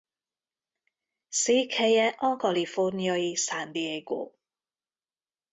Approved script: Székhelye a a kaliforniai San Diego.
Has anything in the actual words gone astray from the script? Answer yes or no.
yes